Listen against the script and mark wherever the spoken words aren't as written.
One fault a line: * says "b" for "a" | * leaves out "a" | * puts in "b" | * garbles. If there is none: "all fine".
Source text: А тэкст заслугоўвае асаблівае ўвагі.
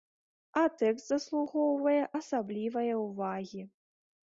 all fine